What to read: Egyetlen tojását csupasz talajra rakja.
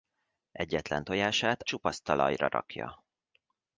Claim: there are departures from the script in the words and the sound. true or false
false